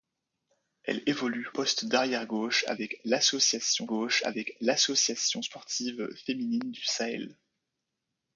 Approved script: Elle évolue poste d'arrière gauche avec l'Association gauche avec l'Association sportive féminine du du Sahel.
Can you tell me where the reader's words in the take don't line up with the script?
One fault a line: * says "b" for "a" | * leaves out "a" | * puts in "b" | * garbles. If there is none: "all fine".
all fine